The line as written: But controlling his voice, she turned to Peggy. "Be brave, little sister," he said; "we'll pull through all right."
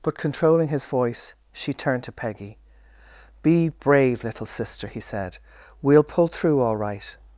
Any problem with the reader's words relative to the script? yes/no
no